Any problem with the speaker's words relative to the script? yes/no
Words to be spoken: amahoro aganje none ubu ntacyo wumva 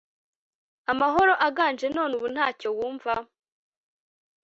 no